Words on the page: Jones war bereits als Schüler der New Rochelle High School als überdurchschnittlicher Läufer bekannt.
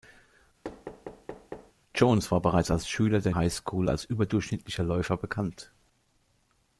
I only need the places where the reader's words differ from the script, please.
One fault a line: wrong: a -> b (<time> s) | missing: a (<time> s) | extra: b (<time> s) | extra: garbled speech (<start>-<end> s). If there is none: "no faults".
missing: New Rochelle (3.3 s)